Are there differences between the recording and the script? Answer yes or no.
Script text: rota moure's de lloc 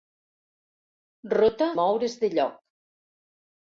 no